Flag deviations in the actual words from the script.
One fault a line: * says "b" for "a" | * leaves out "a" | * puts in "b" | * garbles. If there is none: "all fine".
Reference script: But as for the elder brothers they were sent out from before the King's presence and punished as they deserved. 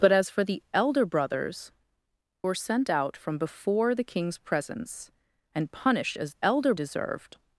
* leaves out "they"
* says "elder" for "they"